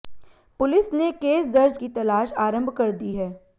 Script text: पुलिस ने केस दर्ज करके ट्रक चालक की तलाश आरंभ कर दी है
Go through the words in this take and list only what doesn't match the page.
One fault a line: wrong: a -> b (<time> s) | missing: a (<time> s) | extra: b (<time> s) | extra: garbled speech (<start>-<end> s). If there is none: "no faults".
missing: करके ट्रक चालक (1.8 s)